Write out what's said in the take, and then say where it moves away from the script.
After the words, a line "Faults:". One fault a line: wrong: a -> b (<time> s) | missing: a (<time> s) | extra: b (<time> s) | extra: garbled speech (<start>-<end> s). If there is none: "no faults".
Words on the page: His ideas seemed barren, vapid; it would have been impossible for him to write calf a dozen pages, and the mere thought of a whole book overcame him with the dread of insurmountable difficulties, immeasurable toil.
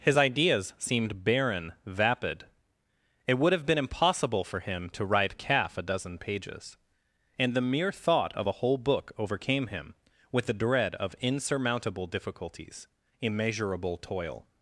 His ideas seemed barren, vapid; it would have been impossible for him to write calf a dozen pages, and the mere thought of a whole book overcame him with the dread of insurmountable difficulties, immeasurable toil.
Faults:
no faults